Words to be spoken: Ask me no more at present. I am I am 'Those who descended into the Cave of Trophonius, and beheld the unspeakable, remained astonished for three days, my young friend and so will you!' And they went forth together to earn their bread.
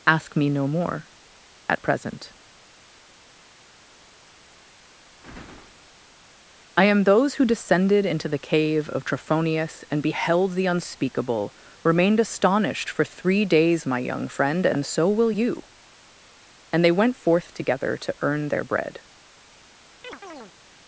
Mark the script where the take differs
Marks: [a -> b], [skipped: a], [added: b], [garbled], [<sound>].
Ask me no more at present. I am [skipped: I am] 'Those who descended into the Cave of Trophonius, and beheld the unspeakable, remained astonished for three days, my young friend and so will you!' And they went forth together to earn their bread. [chirp]